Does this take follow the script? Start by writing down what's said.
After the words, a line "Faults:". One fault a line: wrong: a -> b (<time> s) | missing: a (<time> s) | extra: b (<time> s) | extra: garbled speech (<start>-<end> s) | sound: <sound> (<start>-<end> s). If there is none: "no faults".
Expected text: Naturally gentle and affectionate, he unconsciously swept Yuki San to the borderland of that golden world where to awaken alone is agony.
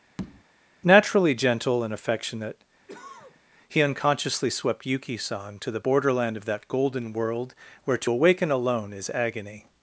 Naturally gentle and affectionate, he unconsciously swept Yuki San to the borderland of that golden world where to awaken alone is agony.
Faults:
sound: tap (0.2-0.4 s)
sound: cough (2.9-3.4 s)